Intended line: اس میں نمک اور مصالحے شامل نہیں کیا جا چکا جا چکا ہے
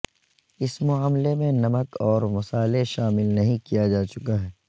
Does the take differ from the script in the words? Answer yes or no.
yes